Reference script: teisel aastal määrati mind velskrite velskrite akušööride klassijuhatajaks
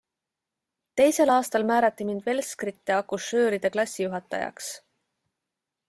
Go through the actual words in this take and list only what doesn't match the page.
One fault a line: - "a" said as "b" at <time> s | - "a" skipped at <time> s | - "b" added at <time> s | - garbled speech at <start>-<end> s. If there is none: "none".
- "velskrite" skipped at 3.0 s